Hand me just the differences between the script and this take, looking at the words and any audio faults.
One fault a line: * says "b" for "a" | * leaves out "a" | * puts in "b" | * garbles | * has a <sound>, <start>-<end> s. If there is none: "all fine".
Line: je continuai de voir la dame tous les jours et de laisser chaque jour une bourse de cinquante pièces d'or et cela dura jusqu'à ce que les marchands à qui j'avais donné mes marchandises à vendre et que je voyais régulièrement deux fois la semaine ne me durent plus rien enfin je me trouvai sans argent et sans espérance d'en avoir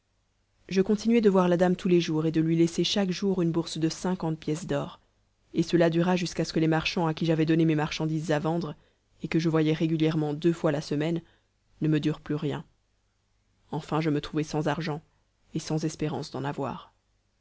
* puts in "lui"